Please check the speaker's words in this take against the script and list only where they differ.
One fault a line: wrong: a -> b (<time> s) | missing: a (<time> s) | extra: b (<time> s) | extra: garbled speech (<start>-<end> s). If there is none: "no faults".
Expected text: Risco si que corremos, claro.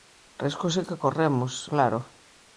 no faults